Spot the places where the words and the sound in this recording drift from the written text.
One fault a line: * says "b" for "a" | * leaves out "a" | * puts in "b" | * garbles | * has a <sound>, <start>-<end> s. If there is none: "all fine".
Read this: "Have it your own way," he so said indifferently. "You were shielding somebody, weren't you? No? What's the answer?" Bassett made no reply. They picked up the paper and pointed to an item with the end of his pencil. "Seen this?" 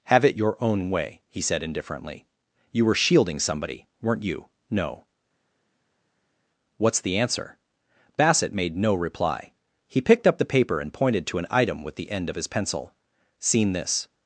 * leaves out "so"
* says "He" for "They"